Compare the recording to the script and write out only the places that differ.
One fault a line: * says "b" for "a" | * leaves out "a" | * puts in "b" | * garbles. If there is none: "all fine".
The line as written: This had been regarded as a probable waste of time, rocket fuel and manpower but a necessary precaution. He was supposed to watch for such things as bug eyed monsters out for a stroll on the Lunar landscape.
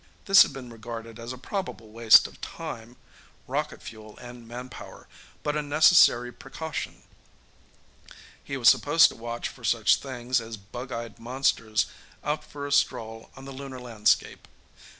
all fine